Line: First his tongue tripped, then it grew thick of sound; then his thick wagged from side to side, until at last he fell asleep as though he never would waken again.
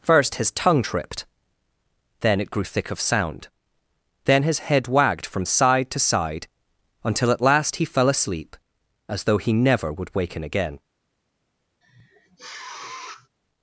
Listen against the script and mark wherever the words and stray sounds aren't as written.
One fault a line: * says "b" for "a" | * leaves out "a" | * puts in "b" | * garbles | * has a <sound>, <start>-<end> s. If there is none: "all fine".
* says "head" for "thick"
* has a sniff, 11.8-13.3 s